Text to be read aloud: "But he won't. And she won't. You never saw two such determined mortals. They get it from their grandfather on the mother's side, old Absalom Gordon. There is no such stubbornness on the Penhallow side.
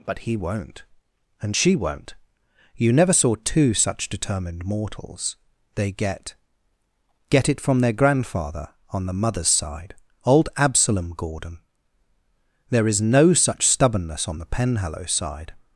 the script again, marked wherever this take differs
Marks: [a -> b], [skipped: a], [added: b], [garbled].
"But he won't. And she won't. You never saw two such determined mortals. They get [added: get] it from their grandfather on the mother's side, old Absalom Gordon. There is no such stubbornness on the Penhallow side.